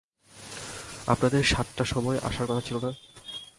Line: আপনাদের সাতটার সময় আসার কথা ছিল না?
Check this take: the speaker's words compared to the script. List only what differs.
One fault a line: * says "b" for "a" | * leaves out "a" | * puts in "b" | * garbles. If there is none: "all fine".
all fine